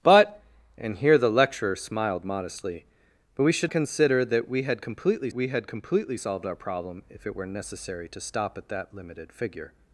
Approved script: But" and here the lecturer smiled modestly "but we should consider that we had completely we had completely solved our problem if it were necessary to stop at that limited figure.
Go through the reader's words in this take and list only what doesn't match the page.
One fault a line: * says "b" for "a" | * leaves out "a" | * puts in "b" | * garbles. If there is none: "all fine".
all fine